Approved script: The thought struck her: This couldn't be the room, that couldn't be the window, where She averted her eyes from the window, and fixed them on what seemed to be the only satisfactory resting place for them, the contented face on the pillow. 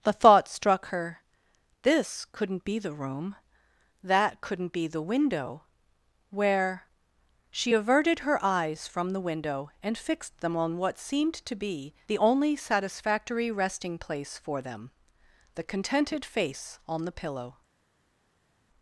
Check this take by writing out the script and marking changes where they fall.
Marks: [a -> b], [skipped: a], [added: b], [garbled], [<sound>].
The thought struck her: This couldn't be the room, that couldn't be the window, where She averted her eyes from the window, and fixed them on what seemed to be the only satisfactory resting place for them, the contented face on the pillow.